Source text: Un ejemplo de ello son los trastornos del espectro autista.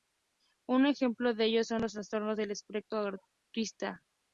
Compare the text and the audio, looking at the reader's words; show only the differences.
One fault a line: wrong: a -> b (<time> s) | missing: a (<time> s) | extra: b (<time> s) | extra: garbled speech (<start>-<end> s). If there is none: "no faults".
no faults